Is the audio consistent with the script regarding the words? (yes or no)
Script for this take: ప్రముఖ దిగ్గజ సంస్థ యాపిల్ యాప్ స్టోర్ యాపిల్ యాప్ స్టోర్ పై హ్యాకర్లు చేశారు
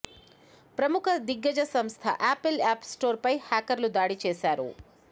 no